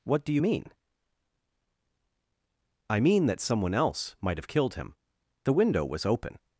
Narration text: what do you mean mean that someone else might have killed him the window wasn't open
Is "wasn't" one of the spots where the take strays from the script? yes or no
yes